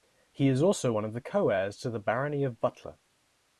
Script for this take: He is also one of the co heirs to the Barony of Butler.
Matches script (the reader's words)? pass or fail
pass